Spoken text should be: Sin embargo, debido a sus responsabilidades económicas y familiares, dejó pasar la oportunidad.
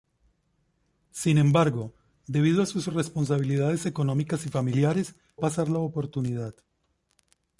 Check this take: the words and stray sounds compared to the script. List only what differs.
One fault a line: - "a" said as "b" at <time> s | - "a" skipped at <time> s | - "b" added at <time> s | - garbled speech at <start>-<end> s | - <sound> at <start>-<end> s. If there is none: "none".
- "dejó" skipped at 5.1 s